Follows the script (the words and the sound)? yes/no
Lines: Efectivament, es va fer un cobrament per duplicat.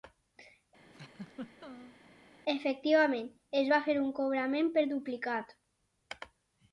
no